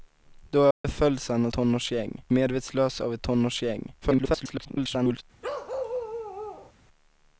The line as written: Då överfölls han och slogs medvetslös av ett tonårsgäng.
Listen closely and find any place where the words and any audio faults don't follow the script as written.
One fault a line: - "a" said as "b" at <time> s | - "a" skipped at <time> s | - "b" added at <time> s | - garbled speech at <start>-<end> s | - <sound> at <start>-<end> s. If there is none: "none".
- dropout at 0.7-0.8 s
- "slogs" said as "tonårsgäng" at 1.5 s
- garbled speech at 4.0-5.2 s
- bark at 5.4-6.7 s